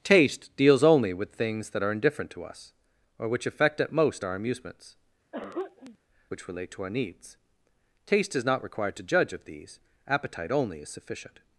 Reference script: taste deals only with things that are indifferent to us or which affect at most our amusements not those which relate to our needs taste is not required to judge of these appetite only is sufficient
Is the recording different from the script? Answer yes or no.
yes